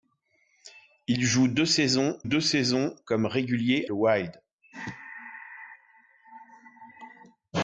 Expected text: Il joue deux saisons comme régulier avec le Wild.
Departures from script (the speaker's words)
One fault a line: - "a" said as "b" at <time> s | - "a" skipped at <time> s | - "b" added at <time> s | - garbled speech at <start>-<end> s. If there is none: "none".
- "deux saisons" added at 2.2 s
- "avec" skipped at 3.9 s